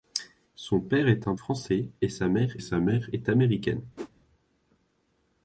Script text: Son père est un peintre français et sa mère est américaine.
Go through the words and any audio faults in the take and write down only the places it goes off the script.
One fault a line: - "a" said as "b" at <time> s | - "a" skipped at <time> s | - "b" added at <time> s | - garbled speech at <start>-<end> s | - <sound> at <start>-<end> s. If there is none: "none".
- "peintre" skipped at 1.4 s
- "sa mère" added at 2.6 s
- whoosh at 4.0-4.1 s